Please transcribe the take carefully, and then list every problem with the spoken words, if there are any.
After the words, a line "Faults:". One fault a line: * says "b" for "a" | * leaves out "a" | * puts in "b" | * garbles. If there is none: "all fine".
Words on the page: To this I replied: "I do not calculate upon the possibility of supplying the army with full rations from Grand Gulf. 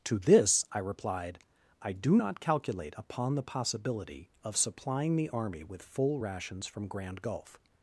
To this I replied: "I do not calculate upon the possibility of supplying the army with full rations from Grand Gulf.
Faults:
all fine